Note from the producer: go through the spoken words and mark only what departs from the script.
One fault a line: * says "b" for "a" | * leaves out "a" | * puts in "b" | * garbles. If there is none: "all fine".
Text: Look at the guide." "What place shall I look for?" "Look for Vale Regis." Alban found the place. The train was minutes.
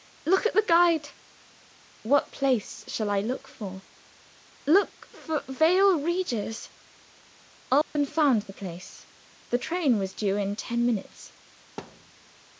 * puts in "due in ten"